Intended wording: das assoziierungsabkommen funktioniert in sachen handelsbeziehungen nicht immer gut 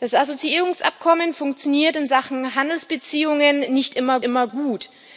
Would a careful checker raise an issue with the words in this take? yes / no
yes